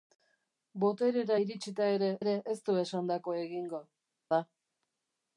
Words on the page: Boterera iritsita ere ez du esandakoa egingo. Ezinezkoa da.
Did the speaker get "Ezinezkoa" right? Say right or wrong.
wrong